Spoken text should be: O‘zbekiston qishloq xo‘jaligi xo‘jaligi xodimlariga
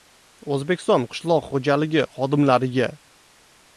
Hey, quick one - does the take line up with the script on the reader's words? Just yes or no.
no